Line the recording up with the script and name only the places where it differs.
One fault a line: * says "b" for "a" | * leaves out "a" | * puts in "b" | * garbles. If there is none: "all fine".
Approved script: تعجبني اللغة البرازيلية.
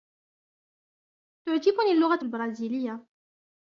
all fine